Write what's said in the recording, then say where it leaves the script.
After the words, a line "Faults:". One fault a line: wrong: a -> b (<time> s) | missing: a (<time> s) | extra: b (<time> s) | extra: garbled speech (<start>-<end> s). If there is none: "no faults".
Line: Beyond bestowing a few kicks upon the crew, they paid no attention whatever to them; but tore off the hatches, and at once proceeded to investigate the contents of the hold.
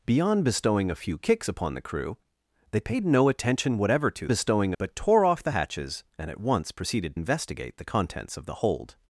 Beyond bestowing a few kicks upon the crew, they paid no attention whatever to bestowing; but tore off the hatches, and at once proceeded investigate the contents of the hold.
Faults:
wrong: them -> bestowing (4.3 s)
missing: to (7.2 s)